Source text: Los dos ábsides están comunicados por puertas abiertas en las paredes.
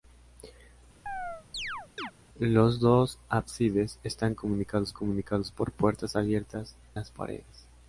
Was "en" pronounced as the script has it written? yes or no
no